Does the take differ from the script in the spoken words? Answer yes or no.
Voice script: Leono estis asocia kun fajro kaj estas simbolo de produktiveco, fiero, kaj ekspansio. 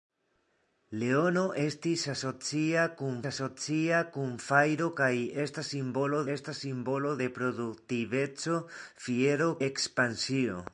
yes